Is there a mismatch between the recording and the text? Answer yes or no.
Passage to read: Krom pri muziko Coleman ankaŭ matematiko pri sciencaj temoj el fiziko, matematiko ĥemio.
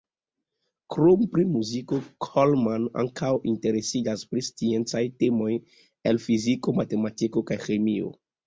yes